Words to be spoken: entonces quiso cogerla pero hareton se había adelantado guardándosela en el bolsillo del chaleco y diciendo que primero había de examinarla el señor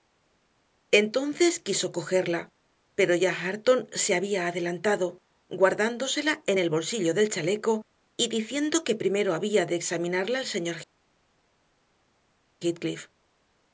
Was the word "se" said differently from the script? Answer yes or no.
no